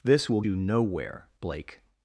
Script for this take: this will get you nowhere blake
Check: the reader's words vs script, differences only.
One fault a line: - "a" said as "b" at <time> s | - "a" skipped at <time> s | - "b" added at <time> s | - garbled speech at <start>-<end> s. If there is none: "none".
- "get" skipped at 0.4 s